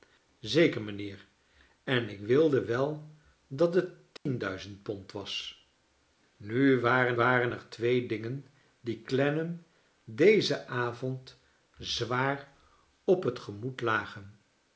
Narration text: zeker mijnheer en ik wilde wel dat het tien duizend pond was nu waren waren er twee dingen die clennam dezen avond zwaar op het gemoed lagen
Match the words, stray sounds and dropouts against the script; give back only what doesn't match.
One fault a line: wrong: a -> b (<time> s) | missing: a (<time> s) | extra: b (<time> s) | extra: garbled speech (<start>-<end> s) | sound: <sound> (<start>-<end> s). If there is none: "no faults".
sound: dropout (4.2-4.3 s)